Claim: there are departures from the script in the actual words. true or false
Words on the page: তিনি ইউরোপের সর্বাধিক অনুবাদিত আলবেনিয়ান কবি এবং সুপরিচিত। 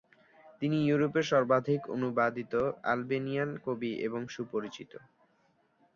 false